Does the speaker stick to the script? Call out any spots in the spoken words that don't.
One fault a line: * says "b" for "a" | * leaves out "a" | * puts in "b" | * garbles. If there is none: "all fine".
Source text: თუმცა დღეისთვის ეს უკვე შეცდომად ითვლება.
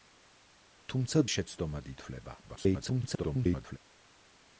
* leaves out "დღეისთვის ეს უკვე"
* garbles